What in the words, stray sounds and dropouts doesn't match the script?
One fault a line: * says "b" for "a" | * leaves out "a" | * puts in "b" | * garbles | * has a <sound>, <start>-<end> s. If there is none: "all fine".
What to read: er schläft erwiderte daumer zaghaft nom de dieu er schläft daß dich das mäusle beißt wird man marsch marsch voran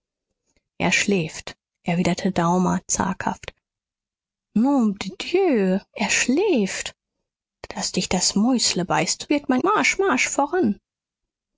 all fine